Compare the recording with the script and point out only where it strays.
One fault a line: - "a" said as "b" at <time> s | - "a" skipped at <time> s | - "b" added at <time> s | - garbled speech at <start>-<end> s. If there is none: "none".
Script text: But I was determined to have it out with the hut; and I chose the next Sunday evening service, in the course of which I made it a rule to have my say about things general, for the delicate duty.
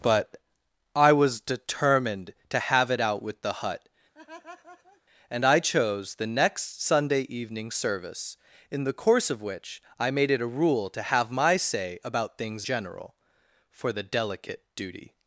none